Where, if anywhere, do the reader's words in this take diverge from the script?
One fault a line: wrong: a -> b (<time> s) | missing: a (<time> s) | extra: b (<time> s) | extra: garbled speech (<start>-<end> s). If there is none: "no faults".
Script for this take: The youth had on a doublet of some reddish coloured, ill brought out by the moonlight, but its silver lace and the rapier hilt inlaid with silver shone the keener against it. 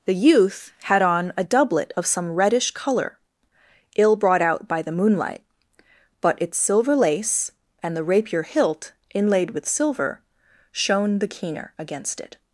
wrong: coloured -> colour (2.7 s)